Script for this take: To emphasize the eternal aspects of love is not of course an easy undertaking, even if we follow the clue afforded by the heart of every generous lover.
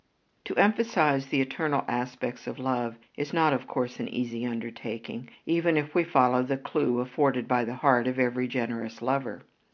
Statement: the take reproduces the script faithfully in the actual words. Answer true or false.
true